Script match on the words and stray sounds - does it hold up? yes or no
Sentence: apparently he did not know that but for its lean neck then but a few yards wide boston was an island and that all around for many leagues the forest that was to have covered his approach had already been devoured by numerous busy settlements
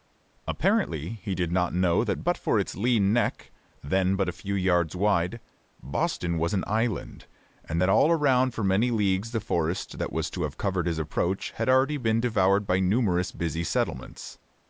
yes